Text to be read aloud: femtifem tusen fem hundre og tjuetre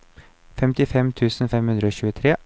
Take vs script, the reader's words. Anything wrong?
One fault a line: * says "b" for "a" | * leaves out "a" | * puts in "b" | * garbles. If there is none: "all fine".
all fine